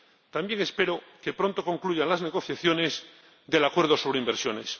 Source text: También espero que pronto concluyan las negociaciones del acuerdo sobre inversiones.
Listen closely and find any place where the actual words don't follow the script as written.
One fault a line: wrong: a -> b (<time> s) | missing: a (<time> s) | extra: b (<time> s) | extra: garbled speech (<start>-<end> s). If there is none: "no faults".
no faults